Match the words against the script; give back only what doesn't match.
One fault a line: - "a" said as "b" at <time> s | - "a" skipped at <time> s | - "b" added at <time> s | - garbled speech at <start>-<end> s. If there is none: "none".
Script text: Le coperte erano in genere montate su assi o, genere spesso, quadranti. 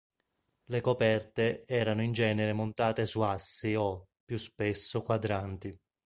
- "genere" said as "più" at 4.2 s